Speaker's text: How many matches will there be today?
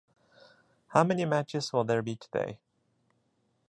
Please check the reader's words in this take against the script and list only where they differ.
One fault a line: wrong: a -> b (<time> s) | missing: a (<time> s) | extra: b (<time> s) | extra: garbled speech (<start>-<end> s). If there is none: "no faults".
no faults